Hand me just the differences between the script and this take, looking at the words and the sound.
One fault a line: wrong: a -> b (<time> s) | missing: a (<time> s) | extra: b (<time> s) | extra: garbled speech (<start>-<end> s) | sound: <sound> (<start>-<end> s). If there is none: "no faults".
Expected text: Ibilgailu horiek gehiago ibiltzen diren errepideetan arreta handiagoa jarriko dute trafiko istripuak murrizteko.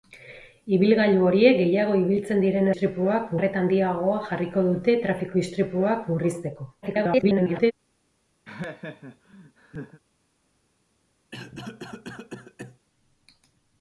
wrong: errepideetan -> istripuak (2.7 s)
extra: garbled speech (6.8-7.7 s)
sound: laugh (8.4-10.0 s)
sound: cough (11.3-12.8 s)